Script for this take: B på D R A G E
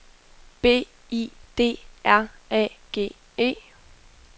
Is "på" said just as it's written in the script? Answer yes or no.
no